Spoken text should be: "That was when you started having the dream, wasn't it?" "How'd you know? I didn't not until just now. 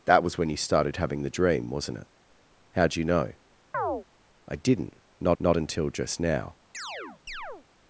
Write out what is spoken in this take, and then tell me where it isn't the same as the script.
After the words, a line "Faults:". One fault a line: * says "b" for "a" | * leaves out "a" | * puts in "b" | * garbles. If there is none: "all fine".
"That was when you started having the dream, wasn't it?" "How'd you know? I didn't not not until just now.
Faults:
* puts in "not"